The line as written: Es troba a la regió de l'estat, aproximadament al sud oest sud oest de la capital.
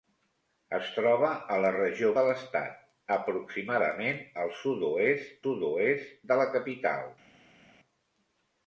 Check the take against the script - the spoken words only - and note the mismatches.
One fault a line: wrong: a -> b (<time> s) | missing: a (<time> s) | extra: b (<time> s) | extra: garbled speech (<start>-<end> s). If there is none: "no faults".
no faults